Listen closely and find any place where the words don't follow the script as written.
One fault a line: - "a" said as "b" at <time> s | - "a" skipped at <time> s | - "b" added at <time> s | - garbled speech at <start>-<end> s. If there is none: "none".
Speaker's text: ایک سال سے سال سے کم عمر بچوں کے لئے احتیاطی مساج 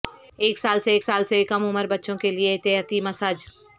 none